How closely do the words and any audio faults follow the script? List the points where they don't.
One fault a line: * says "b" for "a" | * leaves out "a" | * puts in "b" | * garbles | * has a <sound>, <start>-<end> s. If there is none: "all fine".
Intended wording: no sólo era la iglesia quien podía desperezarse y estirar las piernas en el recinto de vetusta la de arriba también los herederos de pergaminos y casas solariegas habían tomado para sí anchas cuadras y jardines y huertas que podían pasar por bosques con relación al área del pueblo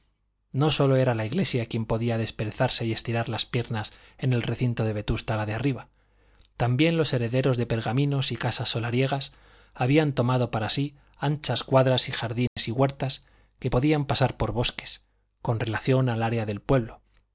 * has a dropout, 12.5-12.6 s